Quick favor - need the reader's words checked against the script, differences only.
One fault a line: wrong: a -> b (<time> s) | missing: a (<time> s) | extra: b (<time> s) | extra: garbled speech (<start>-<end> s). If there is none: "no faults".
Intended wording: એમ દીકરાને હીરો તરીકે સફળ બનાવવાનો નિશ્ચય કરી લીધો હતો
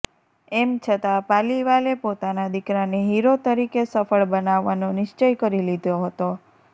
extra: છતાં પાલીવાલે પોતાના (0.8 s)